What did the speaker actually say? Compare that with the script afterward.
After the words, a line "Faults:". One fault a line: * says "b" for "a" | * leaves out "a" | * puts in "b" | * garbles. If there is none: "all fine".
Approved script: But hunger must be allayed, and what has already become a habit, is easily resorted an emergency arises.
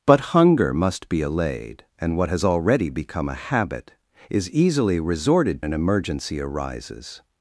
But hunger must be allayed, and what has already become a habit, is easily resorted an emergency arises.
Faults:
all fine